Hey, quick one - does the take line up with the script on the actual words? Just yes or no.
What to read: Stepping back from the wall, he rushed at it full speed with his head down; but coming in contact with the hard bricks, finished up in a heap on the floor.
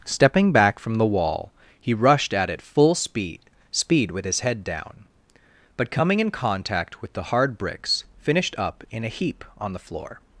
no